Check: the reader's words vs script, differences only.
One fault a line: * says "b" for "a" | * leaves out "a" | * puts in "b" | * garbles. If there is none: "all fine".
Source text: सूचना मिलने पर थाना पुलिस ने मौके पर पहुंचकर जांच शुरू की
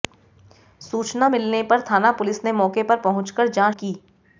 * leaves out "शुरू"